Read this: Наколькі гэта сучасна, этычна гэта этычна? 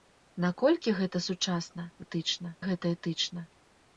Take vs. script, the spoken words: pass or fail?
pass